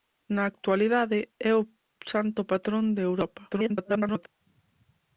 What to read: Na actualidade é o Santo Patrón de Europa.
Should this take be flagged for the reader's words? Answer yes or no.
yes